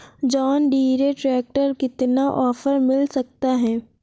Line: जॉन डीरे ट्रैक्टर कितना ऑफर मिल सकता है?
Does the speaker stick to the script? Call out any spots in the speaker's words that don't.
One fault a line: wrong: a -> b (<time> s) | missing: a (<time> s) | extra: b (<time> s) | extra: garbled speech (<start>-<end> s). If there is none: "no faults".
no faults